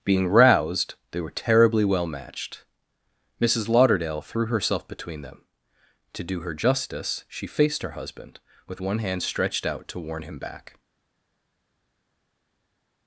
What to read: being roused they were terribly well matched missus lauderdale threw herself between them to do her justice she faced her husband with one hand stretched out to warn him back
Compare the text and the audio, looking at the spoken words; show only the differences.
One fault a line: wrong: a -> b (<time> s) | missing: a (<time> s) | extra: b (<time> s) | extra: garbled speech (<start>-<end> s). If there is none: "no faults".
no faults